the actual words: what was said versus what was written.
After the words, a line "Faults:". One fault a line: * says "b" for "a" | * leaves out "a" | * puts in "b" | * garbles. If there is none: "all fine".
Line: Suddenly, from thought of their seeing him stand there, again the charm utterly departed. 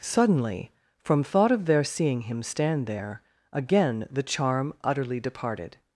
Suddenly, from thought of their seeing him stand there, again the charm utterly departed.
Faults:
all fine